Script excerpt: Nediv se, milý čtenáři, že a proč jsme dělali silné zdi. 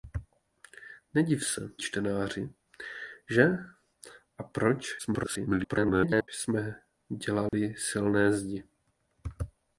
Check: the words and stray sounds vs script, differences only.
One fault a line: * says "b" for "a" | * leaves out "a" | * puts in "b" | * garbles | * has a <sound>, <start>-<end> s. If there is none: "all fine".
* leaves out "milý"
* garbles
* has a dropout, 7.5-7.5 s